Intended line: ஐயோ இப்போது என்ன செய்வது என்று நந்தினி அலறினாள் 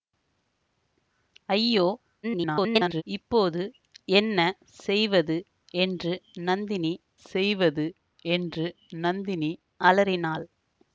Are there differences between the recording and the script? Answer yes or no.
yes